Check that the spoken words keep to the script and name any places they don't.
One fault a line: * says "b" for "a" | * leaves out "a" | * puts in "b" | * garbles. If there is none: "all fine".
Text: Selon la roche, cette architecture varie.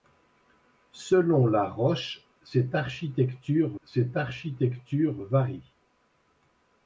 * puts in "cette architecture"